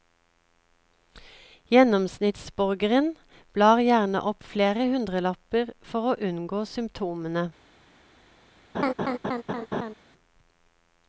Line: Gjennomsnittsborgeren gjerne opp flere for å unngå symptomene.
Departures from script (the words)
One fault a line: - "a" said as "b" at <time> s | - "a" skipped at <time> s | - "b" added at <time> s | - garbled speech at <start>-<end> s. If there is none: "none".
- "blar" added at 3.6 s
- "hundrelapper" added at 5.0 s